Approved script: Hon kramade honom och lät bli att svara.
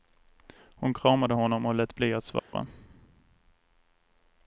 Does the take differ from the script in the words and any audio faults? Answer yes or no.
yes